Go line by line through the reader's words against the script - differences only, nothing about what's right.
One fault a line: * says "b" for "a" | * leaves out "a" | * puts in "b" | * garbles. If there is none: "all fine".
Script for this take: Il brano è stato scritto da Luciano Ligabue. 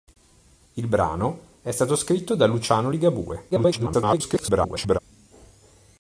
* garbles